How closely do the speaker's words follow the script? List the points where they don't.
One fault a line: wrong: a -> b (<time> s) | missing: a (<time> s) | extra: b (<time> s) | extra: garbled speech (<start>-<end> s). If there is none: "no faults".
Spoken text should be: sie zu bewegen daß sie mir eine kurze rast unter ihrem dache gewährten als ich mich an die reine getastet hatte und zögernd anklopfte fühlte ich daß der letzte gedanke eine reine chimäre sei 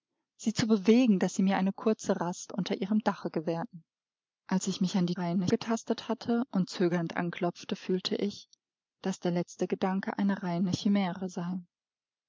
no faults